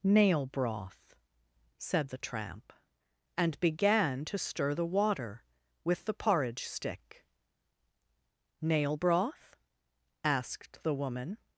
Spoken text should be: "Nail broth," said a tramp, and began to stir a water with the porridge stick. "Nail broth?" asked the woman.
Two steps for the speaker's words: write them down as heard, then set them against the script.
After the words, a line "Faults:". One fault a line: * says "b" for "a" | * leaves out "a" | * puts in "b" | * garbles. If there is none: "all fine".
"Nail broth," said the tramp, and began to stir the water with the porridge stick. "Nail broth?" asked the woman.
Faults:
* says "the" for "a"
* says "the" for "a"